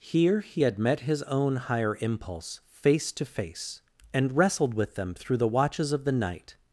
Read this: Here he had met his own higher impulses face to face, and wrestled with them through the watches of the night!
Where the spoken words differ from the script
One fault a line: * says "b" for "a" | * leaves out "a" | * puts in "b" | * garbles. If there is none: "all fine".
* says "impulse" for "impulses"